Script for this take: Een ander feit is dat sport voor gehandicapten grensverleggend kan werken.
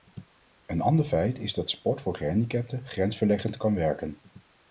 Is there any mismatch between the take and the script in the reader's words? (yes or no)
no